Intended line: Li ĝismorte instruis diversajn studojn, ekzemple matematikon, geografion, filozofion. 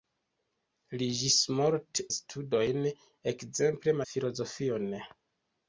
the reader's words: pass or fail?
fail